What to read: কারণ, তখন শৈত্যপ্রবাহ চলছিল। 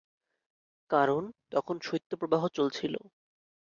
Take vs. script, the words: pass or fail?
pass